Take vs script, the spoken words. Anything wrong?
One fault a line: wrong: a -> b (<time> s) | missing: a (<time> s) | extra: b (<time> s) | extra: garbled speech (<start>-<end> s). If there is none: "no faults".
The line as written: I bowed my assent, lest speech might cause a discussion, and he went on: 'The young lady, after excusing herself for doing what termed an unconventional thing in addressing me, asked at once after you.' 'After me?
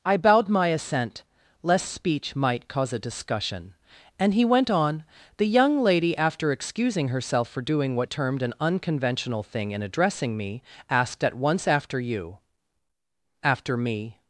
no faults